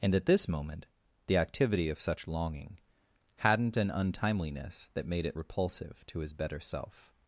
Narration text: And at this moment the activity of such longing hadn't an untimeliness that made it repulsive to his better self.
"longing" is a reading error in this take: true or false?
false